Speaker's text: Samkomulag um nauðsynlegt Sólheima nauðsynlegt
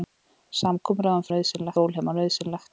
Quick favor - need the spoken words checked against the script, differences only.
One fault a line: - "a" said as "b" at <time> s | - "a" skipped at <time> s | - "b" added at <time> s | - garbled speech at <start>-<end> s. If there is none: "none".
none